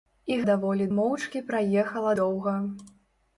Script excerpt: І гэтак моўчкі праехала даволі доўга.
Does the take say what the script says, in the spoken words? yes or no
no